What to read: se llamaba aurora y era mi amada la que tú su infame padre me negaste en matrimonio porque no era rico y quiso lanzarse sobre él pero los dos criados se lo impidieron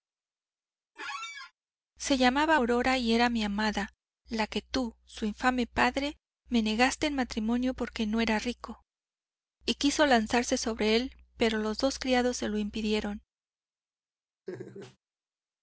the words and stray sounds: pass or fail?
fail